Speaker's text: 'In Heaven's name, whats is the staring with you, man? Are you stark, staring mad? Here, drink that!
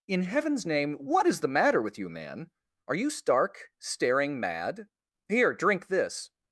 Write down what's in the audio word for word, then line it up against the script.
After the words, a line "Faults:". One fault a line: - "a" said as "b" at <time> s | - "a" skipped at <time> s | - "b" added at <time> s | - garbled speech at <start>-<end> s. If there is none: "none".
'In Heaven's name, what is the matter with you, man? Are you stark, staring mad? Here, drink this!
Faults:
- "whats" said as "what" at 0.9 s
- "staring" said as "matter" at 1.5 s
- "that" said as "this" at 5.9 s